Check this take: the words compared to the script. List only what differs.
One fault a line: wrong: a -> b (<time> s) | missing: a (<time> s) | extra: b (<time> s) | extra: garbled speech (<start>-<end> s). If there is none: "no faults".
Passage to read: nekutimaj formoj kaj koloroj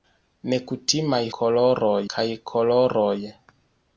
wrong: formoj -> koloroj (1.4 s)